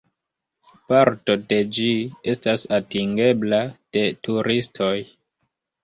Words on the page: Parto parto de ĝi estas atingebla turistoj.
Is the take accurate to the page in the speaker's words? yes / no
no